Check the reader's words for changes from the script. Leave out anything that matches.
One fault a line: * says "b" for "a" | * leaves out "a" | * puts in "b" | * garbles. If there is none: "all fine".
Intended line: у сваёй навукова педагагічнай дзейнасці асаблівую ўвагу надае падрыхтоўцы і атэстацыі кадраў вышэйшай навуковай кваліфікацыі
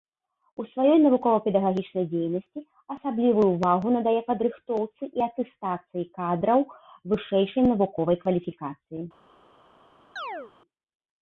all fine